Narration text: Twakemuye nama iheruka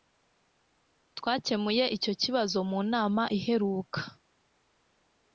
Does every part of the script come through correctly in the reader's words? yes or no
no